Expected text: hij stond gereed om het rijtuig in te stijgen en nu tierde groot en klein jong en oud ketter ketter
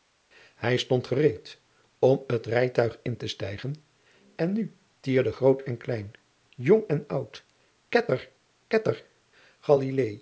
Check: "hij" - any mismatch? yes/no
no